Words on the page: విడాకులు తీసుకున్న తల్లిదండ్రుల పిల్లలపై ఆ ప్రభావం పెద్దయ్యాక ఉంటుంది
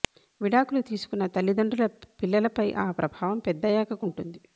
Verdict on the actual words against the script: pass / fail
pass